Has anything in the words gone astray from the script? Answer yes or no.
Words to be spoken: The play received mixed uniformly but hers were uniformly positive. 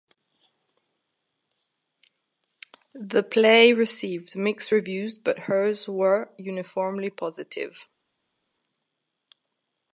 yes